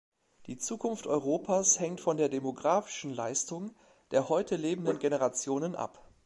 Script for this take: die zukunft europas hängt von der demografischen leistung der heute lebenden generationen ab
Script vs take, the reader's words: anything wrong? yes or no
no